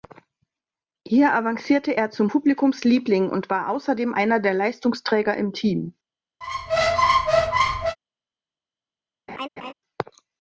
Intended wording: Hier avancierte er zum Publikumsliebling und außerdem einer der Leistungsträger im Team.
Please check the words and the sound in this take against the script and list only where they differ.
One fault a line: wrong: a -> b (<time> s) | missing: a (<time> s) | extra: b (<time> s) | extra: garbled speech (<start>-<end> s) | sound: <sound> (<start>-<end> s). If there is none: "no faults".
extra: war (3.5 s)
sound: squeak (6.4-8.0 s)
sound: laugh (9.3-9.7 s)